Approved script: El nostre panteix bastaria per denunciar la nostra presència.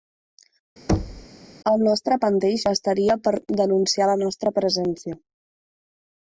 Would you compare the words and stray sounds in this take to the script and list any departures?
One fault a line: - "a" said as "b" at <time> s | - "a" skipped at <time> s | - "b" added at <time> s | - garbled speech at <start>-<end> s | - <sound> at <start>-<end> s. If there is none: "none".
- thud at 0.9-1.3 s